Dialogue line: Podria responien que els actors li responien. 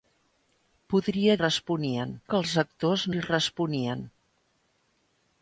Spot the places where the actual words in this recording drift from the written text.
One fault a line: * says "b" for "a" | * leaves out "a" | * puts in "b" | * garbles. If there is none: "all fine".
all fine